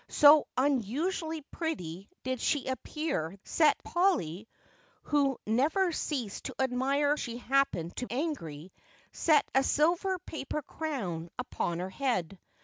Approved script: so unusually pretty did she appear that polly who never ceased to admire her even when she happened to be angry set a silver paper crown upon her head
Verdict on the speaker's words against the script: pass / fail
fail